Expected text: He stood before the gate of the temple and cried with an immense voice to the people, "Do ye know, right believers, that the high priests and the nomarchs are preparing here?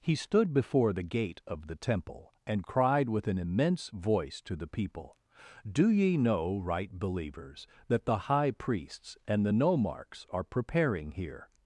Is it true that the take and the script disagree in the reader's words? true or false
false